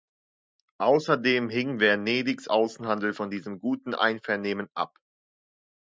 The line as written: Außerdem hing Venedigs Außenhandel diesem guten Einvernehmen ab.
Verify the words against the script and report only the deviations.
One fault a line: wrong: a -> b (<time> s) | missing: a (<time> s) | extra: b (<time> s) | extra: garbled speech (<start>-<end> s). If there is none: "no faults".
extra: von (3.1 s)